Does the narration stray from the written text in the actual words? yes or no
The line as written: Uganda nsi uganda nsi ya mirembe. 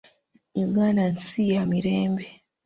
yes